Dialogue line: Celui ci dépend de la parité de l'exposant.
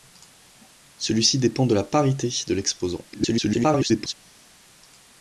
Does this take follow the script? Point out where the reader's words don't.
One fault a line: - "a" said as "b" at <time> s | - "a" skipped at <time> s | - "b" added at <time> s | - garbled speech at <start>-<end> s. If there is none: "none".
- garbled speech at 3.1-4.1 s